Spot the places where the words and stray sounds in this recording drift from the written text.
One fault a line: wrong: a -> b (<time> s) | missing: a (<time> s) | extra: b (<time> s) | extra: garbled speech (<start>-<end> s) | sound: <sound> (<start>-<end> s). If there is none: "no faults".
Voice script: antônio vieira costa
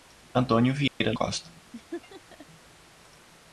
sound: dropout (0.9-1.0 s)
sound: laugh (1.7-2.5 s)